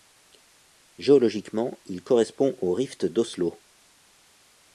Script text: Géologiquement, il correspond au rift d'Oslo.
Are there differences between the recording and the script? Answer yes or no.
no